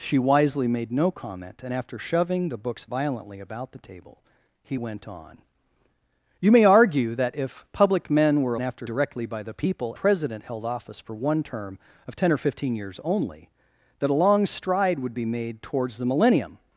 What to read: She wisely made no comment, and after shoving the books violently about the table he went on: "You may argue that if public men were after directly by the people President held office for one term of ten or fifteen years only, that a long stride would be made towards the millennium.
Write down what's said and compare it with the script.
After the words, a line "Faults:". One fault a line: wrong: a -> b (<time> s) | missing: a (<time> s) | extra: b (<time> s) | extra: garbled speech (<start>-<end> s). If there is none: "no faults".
She wisely made no comment, and after shoving the books violently about the table he went on: "You may argue that if public men were after directly by the people President held office for one term of ten or fifteen years only, that a long stride would be made towards the millennium.
Faults:
no faults